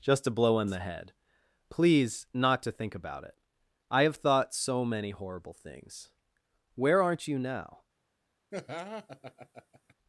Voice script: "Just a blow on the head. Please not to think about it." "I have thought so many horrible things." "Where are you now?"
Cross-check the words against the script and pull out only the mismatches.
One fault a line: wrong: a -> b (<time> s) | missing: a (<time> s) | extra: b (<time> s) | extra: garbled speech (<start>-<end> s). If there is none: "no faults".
wrong: are -> aren't (7.0 s)